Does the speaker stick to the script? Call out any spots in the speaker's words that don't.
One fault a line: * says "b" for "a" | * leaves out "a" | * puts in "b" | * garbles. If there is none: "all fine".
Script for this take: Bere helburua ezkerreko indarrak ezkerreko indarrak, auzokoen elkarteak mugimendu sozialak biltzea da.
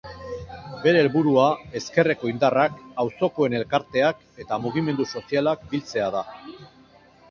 * leaves out "ezkerreko indarrak"
* puts in "eta"